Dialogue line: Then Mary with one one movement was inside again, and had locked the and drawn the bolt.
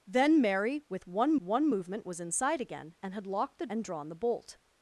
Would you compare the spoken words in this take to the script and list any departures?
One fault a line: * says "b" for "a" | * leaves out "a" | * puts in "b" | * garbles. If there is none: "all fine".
all fine